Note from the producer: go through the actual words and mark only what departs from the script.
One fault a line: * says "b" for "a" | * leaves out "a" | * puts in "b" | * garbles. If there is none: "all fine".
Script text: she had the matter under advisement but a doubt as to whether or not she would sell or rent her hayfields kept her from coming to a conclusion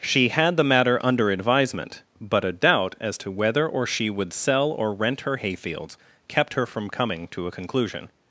* leaves out "not"